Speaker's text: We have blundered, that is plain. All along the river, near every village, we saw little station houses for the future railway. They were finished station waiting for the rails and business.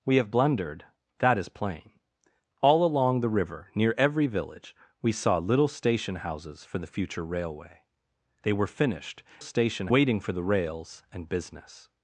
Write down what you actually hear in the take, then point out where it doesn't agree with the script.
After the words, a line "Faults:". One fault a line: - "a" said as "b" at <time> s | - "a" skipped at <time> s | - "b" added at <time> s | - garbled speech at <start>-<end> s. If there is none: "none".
We have blundered, that is plain. All along the river, near every village, we saw little station houses for the future railway. They were finished station waiting for the rails and business.
Faults:
none